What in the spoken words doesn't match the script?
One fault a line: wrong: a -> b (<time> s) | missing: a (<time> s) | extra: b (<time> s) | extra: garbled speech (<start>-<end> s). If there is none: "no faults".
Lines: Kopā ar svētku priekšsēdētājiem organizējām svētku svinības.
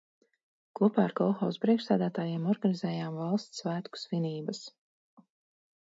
wrong: svētku -> kolhozu (1.2 s)
extra: valsts (3.2 s)